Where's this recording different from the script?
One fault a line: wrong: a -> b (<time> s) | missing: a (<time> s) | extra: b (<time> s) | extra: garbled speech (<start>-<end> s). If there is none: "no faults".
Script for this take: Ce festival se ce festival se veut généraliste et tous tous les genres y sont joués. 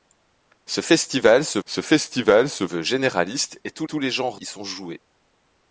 no faults